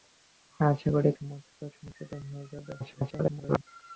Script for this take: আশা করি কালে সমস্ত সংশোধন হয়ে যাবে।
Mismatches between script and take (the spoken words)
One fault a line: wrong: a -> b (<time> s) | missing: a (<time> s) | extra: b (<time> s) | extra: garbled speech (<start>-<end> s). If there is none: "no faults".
missing: কালে (1.1 s)
extra: garbled speech (2.8-3.7 s)